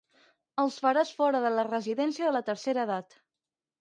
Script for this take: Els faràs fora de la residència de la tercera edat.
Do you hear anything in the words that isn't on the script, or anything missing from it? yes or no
no